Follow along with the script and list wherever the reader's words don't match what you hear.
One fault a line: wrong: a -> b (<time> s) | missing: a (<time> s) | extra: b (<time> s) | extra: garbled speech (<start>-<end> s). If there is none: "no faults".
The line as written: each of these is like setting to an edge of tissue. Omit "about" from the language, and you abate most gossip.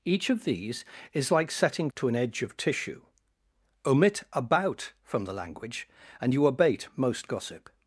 no faults